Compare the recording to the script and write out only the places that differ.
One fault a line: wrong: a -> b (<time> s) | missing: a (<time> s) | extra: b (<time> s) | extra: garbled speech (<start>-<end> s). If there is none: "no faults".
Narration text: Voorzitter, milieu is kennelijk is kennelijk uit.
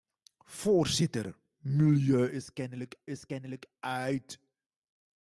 no faults